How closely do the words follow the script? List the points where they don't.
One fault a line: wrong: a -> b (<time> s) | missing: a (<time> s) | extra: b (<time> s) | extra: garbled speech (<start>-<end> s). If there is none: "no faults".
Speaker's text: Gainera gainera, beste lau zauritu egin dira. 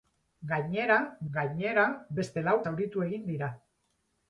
no faults